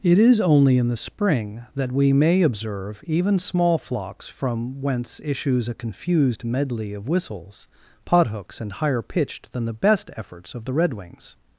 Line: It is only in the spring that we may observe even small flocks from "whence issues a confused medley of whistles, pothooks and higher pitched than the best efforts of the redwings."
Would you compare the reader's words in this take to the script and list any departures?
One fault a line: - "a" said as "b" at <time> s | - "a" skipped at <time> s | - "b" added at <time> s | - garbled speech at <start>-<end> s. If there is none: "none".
none